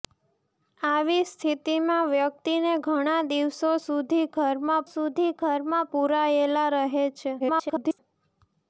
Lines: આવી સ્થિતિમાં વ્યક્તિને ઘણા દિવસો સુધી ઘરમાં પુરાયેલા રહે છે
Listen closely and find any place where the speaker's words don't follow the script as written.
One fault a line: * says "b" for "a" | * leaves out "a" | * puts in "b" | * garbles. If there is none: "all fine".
* puts in "સુધી ઘરમાં"
* garbles